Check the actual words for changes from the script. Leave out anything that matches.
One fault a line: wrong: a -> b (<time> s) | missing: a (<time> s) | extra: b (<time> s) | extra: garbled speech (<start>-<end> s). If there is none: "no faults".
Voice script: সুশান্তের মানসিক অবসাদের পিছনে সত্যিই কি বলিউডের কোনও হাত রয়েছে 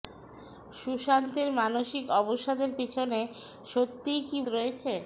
missing: বলিউডের কোনও হাত (4.4 s)